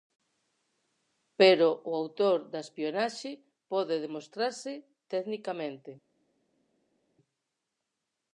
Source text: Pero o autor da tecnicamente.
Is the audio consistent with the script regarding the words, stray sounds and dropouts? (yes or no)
no